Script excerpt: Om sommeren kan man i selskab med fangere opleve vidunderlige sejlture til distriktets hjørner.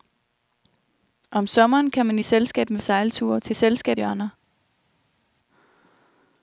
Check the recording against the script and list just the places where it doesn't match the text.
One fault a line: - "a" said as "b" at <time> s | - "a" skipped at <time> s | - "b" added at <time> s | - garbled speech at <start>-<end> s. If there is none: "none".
- "fangere opleve vidunderlige" skipped at 2.8 s
- "distriktets" said as "selskab" at 3.5 s